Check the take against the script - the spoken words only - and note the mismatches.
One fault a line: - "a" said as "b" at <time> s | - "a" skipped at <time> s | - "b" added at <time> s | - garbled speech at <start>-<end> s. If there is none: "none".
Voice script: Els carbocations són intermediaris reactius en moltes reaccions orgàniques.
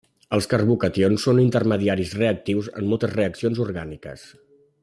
none